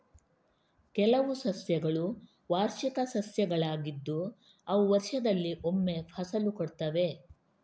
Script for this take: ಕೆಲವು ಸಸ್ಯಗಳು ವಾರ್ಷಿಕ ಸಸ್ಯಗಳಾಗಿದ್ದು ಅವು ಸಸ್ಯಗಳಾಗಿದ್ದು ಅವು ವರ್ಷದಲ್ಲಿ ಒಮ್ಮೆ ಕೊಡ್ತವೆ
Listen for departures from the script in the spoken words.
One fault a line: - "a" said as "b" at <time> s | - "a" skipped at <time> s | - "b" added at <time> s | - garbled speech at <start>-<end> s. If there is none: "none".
- "ಸಸ್ಯಗಳಾಗಿದ್ದು ಅವು" skipped at 4.8 s
- "ಫಸಲು" added at 6.1 s